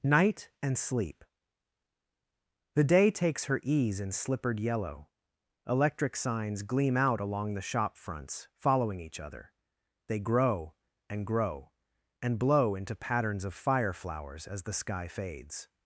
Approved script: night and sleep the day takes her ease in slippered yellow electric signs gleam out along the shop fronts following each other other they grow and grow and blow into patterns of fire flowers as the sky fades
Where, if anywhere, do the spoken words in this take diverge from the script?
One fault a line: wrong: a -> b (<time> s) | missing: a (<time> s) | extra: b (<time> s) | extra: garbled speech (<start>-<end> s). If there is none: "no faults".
missing: other (9.5 s)